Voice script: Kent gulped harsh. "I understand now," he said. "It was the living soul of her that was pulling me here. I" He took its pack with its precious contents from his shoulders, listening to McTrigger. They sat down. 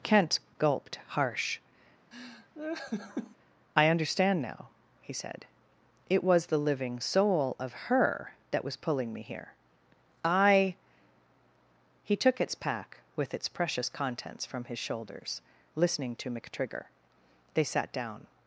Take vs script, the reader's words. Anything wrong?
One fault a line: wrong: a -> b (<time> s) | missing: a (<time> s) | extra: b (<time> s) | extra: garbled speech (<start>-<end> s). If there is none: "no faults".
no faults